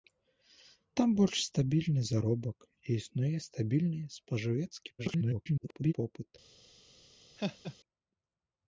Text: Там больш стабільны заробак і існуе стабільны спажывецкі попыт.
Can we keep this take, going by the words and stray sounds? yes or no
no